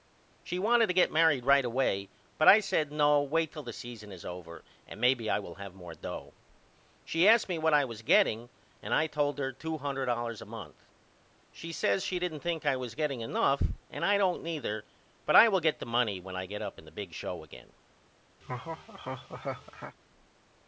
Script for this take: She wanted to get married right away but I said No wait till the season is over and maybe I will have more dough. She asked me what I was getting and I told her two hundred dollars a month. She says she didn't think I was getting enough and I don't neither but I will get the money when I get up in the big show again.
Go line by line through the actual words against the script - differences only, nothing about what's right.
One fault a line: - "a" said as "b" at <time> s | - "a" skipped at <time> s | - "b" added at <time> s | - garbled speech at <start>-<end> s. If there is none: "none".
none